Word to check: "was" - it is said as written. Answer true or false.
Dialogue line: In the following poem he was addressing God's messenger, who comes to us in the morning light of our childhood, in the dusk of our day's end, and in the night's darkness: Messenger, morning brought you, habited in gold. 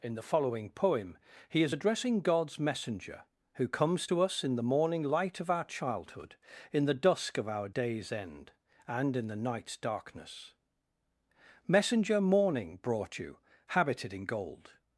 false